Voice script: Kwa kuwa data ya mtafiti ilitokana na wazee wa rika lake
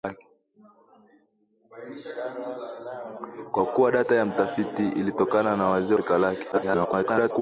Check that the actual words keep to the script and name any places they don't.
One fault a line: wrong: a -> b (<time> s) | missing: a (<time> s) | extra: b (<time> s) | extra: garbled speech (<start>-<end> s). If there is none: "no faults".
missing: wa (6.0 s)
extra: garbled speech (6.5-7.4 s)